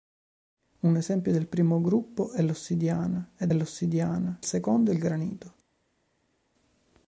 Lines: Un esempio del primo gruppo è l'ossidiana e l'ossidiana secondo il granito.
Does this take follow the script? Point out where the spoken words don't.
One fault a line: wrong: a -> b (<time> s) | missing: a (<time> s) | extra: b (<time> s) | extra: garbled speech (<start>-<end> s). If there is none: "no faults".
no faults